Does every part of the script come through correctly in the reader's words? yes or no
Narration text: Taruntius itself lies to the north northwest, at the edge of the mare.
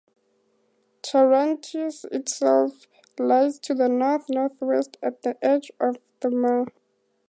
yes